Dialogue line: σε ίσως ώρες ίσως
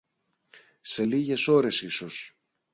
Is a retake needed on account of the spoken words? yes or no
yes